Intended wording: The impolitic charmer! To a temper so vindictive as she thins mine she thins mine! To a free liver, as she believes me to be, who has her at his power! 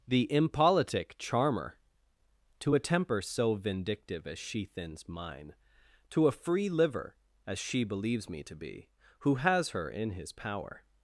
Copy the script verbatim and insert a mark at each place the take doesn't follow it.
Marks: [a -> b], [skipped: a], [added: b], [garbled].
The impolitic charmer! To a temper so vindictive as she thins mine [skipped: she thins mine!] To a free liver, as she believes me to be, who has her [at -> in] his power!